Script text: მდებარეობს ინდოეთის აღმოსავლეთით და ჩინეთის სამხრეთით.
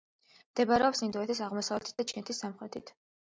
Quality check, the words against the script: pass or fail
pass